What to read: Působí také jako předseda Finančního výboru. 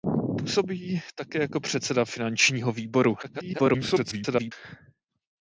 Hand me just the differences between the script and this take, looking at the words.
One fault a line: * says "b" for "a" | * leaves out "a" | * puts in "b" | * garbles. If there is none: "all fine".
* garbles